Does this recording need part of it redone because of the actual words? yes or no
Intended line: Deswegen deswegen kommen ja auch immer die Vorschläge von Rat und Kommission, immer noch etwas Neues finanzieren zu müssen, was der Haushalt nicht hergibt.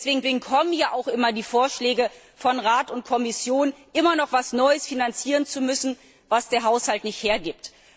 no